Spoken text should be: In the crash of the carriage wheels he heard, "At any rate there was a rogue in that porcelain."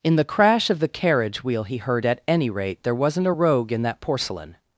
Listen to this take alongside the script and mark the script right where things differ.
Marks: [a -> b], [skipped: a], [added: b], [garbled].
In the crash of the carriage [wheels -> wheel] he heard, "At any rate there [was -> wasn't] a rogue in that porcelain."